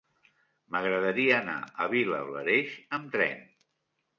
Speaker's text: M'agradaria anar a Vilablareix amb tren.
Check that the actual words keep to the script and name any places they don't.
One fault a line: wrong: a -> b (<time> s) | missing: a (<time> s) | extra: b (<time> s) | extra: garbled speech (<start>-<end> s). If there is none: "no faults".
no faults